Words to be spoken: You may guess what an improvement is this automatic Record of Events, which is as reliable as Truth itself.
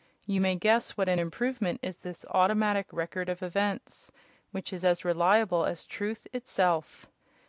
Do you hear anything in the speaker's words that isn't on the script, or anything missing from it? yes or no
no